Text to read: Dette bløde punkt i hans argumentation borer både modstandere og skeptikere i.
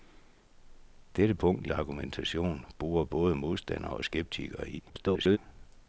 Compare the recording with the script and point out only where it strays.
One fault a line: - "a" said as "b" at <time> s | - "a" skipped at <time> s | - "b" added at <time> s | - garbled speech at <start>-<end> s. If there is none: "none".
- "bløde" skipped at 1.4 s
- "hans" skipped at 1.7 s
- garbled speech at 4.9-5.4 s